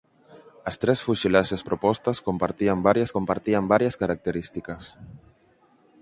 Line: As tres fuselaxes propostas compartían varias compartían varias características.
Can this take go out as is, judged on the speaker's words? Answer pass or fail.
pass